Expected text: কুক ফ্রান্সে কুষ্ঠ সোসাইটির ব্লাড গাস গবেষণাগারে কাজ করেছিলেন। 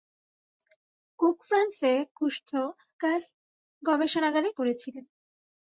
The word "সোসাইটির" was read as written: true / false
false